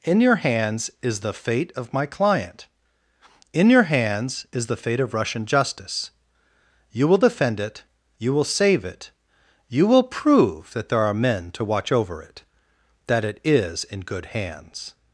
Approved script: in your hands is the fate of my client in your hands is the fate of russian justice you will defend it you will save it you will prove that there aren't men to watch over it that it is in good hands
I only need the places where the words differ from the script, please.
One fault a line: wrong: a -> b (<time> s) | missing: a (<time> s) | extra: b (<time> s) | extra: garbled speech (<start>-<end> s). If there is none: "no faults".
wrong: aren't -> are (11.0 s)